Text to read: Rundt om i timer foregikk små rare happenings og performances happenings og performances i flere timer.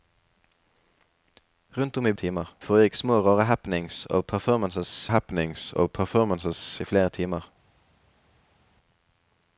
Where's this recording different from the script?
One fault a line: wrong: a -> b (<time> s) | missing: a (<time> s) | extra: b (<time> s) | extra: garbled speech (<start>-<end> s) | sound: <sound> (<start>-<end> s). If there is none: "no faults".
no faults